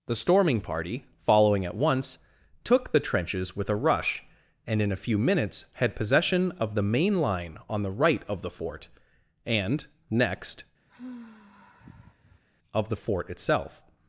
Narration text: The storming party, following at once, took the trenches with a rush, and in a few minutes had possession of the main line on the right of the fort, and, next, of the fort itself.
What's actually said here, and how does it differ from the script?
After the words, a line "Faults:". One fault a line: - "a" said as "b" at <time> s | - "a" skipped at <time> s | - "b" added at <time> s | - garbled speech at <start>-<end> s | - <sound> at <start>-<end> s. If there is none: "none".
The storming party, following at once, took the trenches with a rush, and in a few minutes had possession of the main line on the right of the fort, and, next, of the fort itself.
Faults:
- sigh at 10.9-12.4 s